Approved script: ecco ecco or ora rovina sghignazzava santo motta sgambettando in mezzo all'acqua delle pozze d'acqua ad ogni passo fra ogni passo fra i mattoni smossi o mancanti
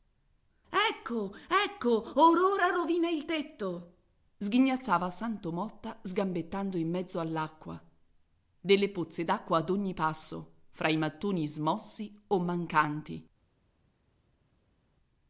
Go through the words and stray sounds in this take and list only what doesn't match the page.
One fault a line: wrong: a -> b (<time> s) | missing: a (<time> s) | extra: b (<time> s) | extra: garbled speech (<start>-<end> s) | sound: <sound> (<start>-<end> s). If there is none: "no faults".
extra: il tetto (3.1 s)
missing: ogni passo fra (10.9 s)